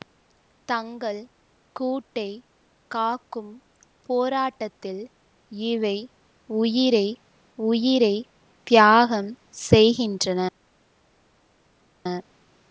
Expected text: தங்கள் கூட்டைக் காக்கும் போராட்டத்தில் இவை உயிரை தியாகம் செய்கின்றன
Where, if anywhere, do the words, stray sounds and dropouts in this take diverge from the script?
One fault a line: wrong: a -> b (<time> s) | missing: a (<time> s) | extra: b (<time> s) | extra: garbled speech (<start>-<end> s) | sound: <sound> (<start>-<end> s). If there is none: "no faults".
extra: உயிரை (7.6 s)